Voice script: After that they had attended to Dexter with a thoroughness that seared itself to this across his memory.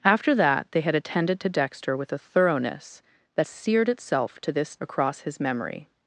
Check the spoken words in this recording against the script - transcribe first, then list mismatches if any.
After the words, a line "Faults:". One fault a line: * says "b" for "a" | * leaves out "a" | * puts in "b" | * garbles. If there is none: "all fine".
After that they had attended to Dexter with a thoroughness that seared itself to this across his memory.
Faults:
all fine